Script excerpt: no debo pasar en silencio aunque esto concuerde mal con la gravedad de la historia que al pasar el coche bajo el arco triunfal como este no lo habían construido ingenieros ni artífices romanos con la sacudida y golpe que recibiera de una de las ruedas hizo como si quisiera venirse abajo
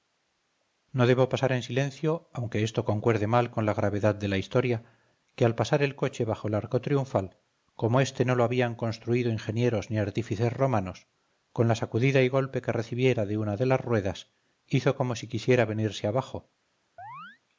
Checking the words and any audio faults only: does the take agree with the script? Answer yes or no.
no